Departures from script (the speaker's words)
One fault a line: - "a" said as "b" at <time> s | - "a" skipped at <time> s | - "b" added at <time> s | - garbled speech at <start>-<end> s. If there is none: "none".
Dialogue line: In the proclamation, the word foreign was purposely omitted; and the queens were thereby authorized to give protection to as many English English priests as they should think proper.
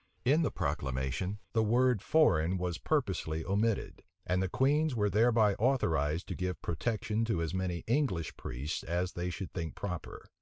- "English" skipped at 8.4 s